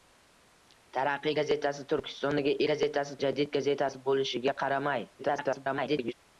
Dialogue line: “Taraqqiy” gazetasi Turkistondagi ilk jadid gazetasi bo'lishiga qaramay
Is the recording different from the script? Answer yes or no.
yes